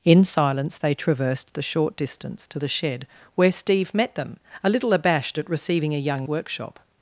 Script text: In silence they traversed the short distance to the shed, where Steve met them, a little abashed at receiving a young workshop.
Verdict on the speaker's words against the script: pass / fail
pass